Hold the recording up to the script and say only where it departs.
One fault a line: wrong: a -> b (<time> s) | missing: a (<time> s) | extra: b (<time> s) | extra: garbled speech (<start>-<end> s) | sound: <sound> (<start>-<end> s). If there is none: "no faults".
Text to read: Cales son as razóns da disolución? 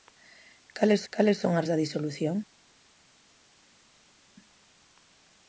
extra: cales (1.1 s)
missing: razóns (1.7 s)